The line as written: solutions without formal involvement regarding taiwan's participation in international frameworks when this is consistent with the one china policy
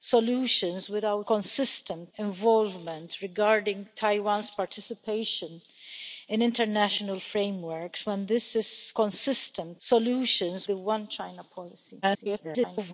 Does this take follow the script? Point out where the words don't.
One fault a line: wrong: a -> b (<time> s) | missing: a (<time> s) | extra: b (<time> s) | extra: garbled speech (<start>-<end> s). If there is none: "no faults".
wrong: formal -> consistent (1.3 s)
wrong: with -> solutions (9.8 s)
extra: garbled speech (12.0-12.9 s)